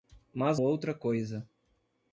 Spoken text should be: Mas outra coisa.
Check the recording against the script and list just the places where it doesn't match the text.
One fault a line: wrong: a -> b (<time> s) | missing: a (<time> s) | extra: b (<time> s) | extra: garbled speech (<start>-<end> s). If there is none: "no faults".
no faults